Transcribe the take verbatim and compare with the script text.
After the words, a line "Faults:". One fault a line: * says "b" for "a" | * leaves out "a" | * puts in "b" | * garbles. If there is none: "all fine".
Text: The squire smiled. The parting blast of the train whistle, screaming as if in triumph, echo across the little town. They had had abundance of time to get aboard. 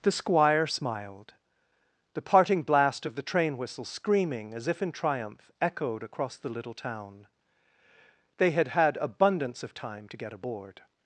The squire smiled. The parting blast of the train whistle, screaming as if in triumph, echoed across the little town. They had had abundance of time to get aboard.
Faults:
* says "echoed" for "echo"